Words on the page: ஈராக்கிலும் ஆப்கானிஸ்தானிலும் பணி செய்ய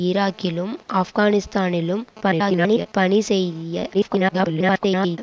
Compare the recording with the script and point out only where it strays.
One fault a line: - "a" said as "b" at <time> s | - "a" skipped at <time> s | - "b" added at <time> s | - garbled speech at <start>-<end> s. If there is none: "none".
- garbled speech at 2.2-2.9 s
- garbled speech at 3.9-5.2 s